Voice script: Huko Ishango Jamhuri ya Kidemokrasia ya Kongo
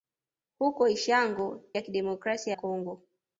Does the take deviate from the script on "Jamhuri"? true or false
true